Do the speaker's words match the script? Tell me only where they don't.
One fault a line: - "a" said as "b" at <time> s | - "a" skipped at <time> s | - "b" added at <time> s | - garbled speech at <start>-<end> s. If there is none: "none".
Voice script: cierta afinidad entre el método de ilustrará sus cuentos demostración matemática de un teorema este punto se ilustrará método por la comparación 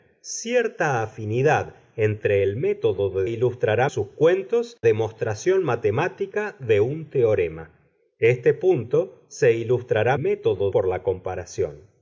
none